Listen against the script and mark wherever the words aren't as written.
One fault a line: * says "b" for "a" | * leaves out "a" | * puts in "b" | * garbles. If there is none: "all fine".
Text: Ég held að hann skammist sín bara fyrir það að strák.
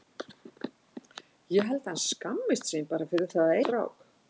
all fine